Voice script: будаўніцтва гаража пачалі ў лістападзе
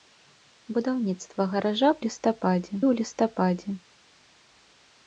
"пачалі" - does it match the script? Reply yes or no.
no